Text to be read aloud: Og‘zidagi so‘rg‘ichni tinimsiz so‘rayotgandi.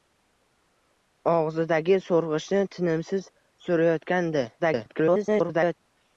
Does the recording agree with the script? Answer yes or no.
no